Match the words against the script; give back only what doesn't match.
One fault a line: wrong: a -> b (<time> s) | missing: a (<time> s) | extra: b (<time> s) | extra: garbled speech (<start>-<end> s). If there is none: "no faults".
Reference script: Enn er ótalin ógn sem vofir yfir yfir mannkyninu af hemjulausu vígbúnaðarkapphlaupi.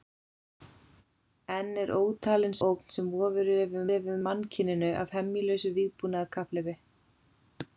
no faults